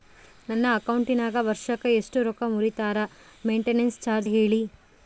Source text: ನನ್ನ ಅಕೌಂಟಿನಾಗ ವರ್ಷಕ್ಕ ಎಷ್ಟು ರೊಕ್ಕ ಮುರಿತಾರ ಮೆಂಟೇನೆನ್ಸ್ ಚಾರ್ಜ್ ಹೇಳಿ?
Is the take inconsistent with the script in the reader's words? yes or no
no